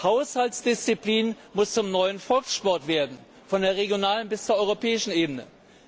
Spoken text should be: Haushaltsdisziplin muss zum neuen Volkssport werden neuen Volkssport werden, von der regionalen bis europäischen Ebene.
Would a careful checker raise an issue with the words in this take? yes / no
yes